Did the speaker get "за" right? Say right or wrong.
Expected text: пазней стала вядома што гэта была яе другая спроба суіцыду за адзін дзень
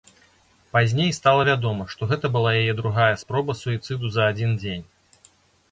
right